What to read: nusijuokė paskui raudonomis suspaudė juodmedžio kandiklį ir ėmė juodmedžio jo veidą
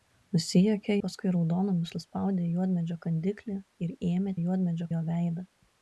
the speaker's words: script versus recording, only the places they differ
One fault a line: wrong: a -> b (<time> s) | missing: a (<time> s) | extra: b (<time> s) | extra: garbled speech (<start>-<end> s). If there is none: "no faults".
no faults